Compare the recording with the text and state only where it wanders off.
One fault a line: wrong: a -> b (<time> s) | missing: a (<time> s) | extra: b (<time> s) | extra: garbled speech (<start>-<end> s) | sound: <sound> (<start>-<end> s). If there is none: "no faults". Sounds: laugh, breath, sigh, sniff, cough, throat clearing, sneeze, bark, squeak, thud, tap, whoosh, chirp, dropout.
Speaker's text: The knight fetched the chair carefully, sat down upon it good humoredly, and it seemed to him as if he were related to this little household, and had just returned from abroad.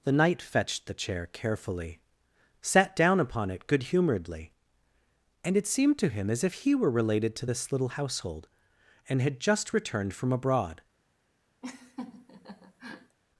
sound: laugh (11.6-13.2 s)